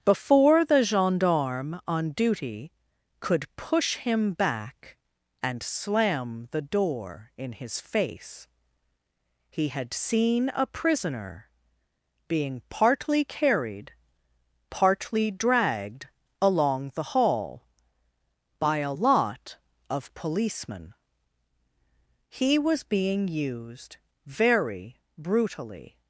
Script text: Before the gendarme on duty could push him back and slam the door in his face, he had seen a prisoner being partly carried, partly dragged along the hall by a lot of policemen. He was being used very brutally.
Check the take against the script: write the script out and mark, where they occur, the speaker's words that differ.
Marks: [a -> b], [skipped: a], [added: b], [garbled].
Before the gendarme on duty could push him back and slam the door in his face, he had seen a prisoner being partly carried, partly dragged along the hall by a lot of policemen. He was being used very brutally.